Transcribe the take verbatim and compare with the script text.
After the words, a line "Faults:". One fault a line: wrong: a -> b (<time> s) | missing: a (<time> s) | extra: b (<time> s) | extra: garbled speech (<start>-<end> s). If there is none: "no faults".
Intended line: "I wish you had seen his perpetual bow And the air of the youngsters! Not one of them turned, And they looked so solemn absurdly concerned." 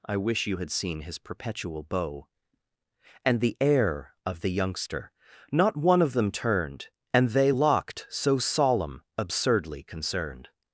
"I wish you had seen his perpetual bow And the air of the youngster! Not one of them turned, And they locked so solemn absurdly concerned."
Faults:
wrong: youngsters -> youngster (4.5 s)
wrong: looked -> locked (7.5 s)